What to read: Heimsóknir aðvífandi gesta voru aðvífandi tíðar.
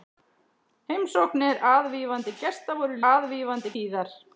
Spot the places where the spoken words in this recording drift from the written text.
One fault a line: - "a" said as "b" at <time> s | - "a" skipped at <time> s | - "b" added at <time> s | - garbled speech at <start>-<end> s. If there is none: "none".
none